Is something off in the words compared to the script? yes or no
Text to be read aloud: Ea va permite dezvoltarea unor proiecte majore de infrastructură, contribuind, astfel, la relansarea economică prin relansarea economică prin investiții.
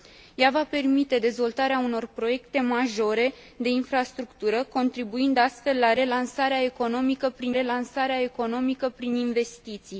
no